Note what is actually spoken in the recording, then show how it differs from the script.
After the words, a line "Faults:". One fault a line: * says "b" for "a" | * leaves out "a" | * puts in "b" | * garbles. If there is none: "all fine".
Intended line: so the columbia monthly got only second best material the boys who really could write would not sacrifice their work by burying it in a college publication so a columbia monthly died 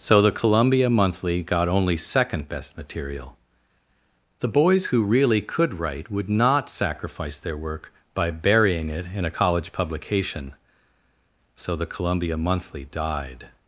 so the columbia monthly got only second best material the boys who really could write would not sacrifice their work by burying it in a college publication so the columbia monthly died
Faults:
* says "the" for "a"